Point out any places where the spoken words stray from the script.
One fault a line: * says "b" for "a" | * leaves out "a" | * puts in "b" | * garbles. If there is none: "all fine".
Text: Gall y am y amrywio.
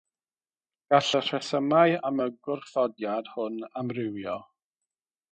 * puts in "rhesymau"
* puts in "gwrthodiad hwn"